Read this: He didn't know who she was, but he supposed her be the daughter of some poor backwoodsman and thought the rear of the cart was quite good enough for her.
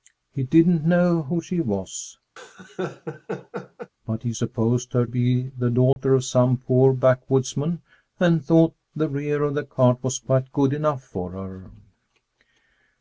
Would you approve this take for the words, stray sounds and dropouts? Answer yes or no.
no